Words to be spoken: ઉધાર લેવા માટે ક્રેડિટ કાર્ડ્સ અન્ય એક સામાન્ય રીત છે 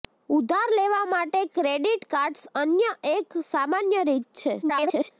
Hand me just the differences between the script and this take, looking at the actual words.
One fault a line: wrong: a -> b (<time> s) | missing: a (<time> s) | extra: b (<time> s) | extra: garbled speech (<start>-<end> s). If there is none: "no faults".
extra: garbled speech (4.6-5.1 s)